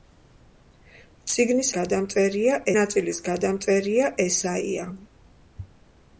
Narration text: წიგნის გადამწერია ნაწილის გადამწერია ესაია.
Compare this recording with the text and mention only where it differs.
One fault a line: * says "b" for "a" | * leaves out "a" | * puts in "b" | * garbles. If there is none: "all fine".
all fine